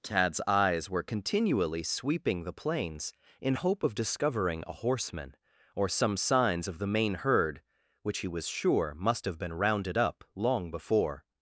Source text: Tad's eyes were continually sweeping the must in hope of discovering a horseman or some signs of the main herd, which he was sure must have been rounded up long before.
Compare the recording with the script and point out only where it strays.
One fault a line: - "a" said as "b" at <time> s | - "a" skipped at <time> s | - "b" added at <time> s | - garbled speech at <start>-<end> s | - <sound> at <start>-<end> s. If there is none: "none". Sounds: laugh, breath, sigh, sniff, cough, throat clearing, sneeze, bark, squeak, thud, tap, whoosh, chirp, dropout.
- "must" said as "plains" at 2.5 s